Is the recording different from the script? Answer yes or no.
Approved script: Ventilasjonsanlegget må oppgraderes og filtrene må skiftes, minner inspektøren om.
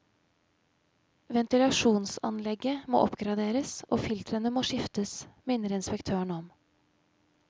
no